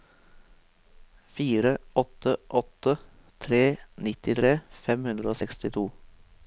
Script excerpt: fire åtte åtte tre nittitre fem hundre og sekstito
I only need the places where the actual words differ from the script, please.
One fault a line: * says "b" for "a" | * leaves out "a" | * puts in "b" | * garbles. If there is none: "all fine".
all fine